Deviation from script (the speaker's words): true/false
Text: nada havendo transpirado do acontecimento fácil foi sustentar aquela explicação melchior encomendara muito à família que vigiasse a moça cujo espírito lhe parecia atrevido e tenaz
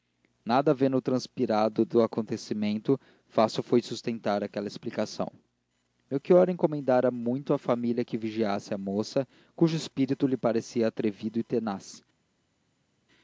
false